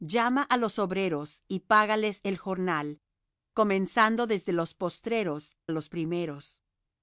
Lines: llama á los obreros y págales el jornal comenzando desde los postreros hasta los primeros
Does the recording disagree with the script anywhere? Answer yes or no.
yes